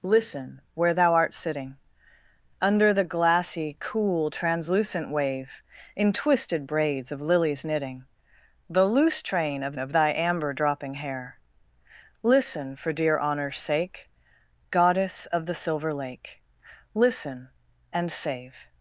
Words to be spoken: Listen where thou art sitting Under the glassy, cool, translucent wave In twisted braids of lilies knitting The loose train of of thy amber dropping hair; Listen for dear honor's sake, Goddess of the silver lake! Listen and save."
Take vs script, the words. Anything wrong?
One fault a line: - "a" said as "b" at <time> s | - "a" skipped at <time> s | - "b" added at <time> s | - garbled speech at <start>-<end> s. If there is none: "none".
none